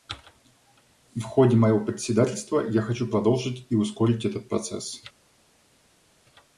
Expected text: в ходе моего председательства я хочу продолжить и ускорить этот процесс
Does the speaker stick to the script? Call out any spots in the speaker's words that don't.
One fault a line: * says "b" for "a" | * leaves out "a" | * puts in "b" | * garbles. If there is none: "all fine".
all fine